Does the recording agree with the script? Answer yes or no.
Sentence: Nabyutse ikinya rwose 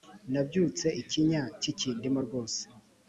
no